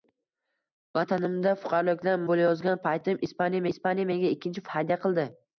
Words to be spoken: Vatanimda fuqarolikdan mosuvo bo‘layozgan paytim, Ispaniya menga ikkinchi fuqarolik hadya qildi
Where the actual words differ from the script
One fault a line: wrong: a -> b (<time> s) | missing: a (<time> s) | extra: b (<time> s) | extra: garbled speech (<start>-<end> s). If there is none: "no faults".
missing: mosuvo (2.2 s)
extra: Ispaniya (3.8 s)
missing: fuqarolik (4.7 s)